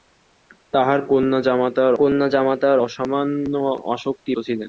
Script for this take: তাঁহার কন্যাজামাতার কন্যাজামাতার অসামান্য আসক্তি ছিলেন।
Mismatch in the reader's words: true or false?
false